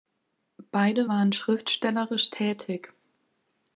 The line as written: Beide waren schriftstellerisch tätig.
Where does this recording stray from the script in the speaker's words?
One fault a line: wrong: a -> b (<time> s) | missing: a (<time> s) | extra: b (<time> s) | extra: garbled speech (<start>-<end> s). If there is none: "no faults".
no faults